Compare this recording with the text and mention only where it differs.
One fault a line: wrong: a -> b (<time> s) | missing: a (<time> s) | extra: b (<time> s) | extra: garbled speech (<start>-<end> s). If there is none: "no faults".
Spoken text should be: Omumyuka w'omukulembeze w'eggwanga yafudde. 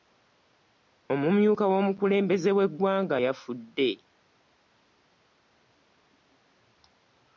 no faults